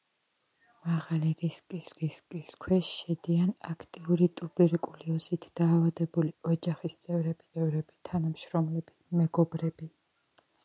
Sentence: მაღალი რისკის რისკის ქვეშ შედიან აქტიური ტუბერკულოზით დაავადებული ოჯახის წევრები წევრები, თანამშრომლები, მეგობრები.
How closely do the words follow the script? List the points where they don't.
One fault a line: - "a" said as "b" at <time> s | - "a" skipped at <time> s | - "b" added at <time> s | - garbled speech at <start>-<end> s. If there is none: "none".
none